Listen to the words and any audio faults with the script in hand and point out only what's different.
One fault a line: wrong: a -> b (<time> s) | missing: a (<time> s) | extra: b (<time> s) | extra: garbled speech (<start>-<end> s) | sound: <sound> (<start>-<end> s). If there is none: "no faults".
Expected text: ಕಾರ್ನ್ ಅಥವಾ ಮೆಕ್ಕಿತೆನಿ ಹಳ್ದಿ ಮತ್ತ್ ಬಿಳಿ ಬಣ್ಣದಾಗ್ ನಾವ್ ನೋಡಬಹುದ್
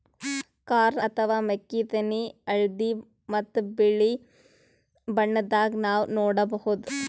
no faults